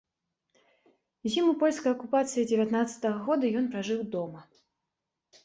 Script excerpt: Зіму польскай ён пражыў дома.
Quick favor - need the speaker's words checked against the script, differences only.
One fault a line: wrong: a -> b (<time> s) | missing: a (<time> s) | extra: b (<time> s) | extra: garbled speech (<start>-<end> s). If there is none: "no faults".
extra: акупацыі дзевятнаццатага года (2.0 s)